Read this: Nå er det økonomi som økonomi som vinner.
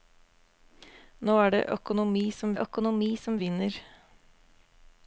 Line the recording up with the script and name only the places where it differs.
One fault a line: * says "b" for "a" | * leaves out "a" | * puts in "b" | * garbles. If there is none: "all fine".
all fine